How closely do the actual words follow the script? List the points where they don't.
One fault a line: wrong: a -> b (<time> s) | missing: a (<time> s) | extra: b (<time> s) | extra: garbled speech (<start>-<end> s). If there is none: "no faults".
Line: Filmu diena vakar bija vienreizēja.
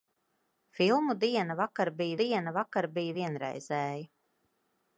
extra: diena vakar bija (2.2 s)